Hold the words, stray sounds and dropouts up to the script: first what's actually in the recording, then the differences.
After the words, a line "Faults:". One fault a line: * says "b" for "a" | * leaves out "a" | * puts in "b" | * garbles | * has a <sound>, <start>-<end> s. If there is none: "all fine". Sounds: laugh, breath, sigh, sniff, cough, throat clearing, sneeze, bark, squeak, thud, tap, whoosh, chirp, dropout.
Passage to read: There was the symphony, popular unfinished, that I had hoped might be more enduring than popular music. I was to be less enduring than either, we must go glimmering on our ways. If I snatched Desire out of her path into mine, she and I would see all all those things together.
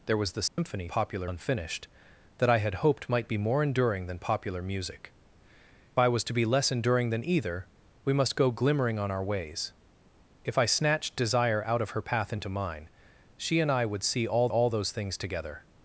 There was the symphony, popular unfinished, that I had hoped might be more enduring than popular music. I was to be less enduring than either, we must go glimmering on our ways. If I snatched Desire out of her path into mine, she and I would see all all those things together.
Faults:
* has a dropout, 0.5-0.6 s